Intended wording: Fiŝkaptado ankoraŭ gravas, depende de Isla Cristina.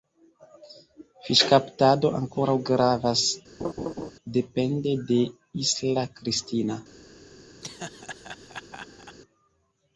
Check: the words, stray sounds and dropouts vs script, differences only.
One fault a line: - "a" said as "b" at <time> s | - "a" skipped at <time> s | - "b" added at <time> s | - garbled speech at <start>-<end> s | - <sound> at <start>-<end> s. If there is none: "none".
- laugh at 3.6-4.1 s
- laugh at 7.6-9.2 s